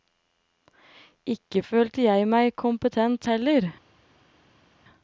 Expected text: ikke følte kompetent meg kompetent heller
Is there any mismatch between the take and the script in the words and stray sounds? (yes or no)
yes